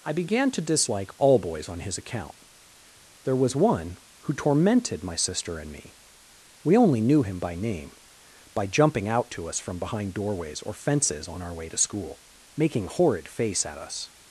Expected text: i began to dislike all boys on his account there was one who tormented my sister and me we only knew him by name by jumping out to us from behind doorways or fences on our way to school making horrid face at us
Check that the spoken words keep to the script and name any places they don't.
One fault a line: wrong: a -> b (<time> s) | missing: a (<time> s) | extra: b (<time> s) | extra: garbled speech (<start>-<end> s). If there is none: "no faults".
no faults